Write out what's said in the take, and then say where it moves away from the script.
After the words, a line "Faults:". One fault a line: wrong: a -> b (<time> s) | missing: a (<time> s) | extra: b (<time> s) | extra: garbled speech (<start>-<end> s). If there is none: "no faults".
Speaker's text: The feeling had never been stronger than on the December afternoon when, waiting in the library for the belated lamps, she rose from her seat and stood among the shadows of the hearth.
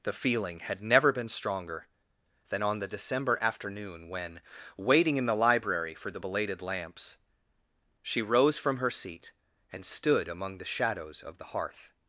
The feeling had never been stronger than on the December afternoon when, waiting in the library for the belated lamps, she rose from her seat and stood among the shadows of the hearth.
Faults:
no faults